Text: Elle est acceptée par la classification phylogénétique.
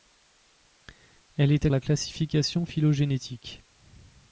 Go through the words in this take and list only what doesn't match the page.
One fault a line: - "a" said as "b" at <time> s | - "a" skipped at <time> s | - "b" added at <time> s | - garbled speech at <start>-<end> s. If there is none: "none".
- "acceptée par" skipped at 1.7 s